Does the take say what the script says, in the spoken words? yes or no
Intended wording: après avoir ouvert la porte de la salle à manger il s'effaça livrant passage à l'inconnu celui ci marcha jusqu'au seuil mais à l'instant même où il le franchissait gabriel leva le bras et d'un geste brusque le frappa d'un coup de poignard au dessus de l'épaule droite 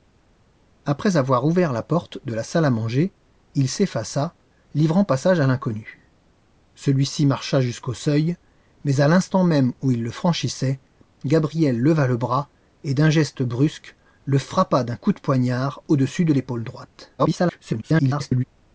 no